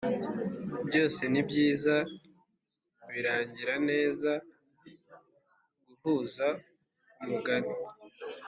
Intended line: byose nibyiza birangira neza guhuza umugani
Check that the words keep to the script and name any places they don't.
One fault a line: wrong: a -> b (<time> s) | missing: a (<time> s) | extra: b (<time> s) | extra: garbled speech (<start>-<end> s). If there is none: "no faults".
no faults